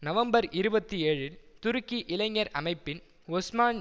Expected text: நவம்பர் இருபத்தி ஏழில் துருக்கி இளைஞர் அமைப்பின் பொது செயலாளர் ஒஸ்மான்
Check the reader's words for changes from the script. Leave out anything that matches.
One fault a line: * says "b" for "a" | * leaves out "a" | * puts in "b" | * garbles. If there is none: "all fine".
* leaves out "பொது செயலாளர்"